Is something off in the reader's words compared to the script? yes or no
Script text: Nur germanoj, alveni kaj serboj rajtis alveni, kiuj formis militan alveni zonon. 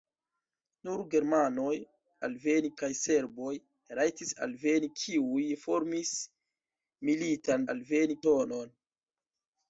no